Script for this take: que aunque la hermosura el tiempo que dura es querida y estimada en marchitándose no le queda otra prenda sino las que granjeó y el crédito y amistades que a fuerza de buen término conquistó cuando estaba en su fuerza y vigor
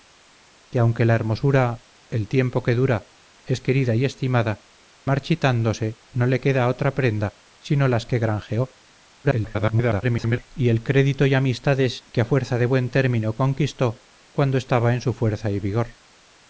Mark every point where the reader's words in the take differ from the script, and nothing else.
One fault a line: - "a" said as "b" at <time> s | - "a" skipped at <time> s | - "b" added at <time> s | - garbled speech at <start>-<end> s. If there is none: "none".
- "en" skipped at 4.7 s
- garbled speech at 9.2-10.5 s